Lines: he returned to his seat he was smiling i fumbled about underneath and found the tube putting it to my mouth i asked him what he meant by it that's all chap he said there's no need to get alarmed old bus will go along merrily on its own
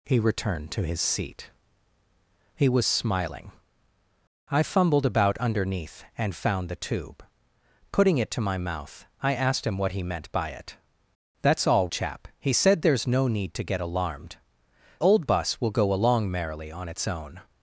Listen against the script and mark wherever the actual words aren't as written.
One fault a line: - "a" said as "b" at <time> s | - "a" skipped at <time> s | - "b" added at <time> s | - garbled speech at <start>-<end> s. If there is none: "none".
none